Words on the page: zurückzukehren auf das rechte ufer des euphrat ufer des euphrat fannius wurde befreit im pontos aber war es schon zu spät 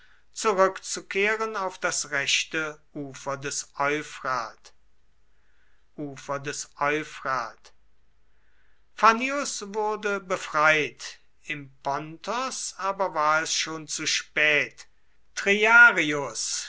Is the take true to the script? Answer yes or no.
yes